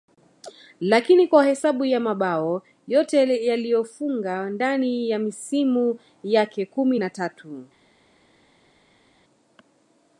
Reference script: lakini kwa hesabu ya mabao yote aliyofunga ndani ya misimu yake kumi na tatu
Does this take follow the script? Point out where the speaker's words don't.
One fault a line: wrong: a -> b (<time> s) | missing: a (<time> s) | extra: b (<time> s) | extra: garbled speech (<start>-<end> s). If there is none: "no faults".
no faults